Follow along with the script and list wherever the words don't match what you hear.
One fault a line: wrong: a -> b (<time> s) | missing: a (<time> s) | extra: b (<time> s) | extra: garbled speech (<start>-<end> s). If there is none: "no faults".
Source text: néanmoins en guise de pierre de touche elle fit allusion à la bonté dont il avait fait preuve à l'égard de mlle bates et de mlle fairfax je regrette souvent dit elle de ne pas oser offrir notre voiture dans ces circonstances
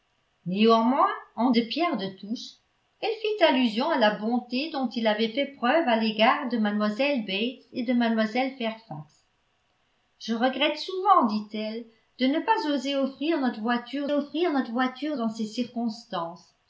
missing: guise (1.5 s)
extra: offrir notre voiture (14.1 s)